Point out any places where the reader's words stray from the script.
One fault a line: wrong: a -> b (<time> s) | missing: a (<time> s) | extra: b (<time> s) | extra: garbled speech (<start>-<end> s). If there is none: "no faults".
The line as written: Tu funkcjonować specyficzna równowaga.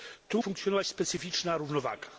no faults